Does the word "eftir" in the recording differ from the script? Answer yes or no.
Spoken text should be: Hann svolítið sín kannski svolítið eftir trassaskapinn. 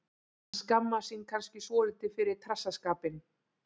yes